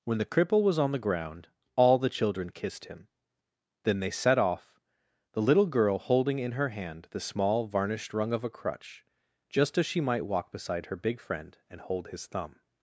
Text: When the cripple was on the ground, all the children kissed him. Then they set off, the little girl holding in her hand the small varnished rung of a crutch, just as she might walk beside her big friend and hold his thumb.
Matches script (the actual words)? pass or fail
pass